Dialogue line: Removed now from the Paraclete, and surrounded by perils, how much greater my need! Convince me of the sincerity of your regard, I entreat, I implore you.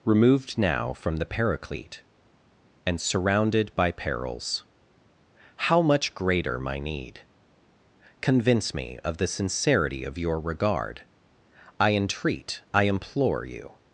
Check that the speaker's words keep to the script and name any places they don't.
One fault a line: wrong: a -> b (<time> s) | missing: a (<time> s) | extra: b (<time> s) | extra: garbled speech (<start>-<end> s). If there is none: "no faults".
no faults